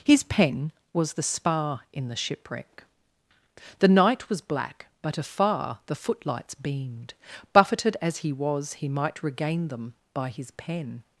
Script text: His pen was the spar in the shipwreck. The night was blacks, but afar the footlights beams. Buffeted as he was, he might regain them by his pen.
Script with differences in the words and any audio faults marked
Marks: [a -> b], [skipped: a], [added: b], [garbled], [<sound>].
His pen was the spar in the shipwreck. The night was [blacks, -> black] but afar the footlights [beams. -> beamed] Buffeted as he was, he might regain them by his pen.